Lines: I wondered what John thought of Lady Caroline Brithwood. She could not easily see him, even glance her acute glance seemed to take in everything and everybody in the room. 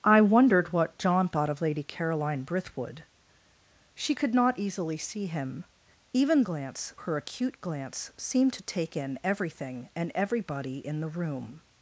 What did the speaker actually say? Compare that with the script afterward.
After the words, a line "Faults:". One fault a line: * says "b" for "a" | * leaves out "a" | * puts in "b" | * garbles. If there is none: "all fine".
I wondered what John thought of Lady Caroline Brithwood. She could not easily see him, even glance her acute glance seemed to take in everything and everybody in the room.
Faults:
all fine